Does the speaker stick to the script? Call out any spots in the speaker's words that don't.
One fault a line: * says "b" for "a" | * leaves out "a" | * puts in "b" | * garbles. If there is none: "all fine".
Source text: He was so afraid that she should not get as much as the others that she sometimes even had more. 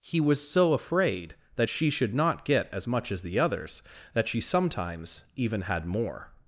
all fine